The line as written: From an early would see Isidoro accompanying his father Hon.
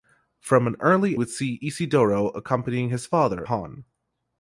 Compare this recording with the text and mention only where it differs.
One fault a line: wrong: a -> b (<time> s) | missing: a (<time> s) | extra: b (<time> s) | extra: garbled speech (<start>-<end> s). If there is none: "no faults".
no faults